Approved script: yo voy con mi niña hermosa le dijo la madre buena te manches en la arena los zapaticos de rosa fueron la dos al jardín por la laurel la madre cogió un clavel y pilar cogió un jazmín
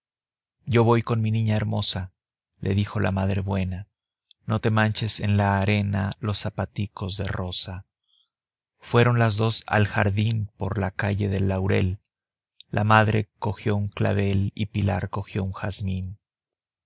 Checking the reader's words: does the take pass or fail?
fail